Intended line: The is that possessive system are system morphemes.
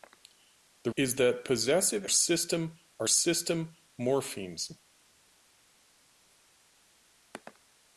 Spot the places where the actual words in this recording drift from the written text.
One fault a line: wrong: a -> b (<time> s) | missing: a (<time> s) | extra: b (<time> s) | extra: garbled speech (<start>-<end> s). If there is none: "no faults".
no faults